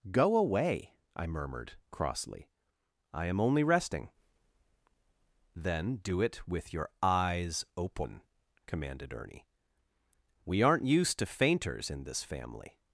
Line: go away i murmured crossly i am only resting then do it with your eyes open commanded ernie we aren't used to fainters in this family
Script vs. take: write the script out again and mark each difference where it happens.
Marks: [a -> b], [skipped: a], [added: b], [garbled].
go away i murmured crossly i am only resting then do it with your eyes open commanded ernie we aren't used to fainters in this family